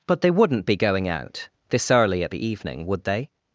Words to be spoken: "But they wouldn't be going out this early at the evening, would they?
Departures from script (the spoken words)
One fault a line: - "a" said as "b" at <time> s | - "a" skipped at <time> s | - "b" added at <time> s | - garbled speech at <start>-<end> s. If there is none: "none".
none